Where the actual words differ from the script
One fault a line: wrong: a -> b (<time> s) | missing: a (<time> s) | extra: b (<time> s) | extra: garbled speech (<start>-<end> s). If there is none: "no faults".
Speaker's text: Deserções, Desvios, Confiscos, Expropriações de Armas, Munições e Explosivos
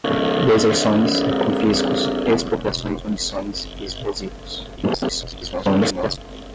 missing: Desvios (1.2 s)
missing: de Armas (3.0 s)
extra: garbled speech (4.8-6.2 s)